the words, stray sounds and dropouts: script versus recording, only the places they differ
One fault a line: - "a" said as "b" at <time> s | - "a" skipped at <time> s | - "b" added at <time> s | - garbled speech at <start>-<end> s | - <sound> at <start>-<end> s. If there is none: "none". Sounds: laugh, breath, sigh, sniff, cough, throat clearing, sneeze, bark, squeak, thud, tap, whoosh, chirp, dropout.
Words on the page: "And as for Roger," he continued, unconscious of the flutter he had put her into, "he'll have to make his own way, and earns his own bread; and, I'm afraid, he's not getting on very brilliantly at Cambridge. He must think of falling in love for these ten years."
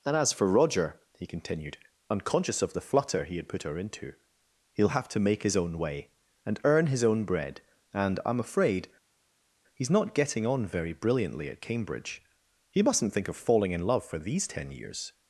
- "earns" said as "earn" at 6.6 s
- "must" said as "mustn't" at 12.8 s